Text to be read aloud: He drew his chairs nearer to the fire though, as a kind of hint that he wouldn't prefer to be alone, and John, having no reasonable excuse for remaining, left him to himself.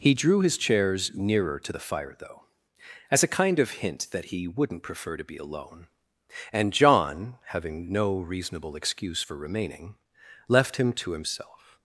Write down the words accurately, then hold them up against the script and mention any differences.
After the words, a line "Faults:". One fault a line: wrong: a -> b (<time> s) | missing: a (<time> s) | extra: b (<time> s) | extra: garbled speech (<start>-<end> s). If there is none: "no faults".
He drew his chairs nearer to the fire though, as a kind of hint that he wouldn't prefer to be alone, and John, having no reasonable excuse for remaining, left him to himself.
Faults:
no faults